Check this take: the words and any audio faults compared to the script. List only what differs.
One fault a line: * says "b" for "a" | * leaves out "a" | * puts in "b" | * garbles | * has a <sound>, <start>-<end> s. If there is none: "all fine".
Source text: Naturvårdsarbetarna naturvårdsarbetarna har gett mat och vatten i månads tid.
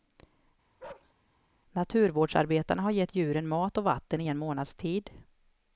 * has a bark, 0.8-1.1 s
* leaves out "naturvårdsarbetarna"
* puts in "djuren"
* puts in "en"